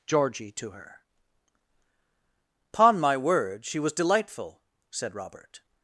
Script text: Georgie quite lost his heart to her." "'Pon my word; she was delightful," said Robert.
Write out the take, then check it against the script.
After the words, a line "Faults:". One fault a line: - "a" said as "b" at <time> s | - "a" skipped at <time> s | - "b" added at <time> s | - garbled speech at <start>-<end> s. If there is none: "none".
Georgie to her." "'Pon my word; she was delightful," said Robert.
Faults:
- "quite lost his heart" skipped at 0.5 s